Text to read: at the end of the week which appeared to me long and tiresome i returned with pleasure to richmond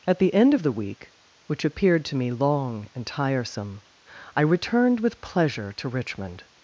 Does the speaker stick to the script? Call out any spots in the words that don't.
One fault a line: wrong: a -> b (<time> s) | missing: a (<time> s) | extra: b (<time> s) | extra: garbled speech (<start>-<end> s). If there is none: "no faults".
no faults